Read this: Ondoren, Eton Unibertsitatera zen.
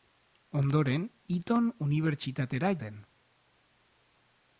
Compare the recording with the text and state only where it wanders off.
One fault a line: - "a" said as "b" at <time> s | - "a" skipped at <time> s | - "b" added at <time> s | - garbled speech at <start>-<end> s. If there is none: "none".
none